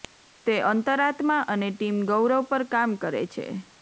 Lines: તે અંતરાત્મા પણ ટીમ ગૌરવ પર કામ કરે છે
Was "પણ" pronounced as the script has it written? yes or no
no